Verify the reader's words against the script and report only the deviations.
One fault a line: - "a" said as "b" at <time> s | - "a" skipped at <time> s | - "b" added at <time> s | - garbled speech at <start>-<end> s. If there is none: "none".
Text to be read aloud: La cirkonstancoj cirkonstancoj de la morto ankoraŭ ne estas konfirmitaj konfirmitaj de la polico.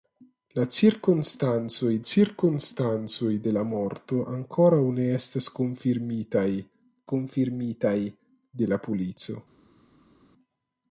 none